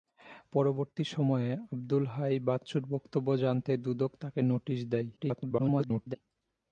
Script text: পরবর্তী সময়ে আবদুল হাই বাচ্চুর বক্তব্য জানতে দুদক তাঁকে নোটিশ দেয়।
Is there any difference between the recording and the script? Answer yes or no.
yes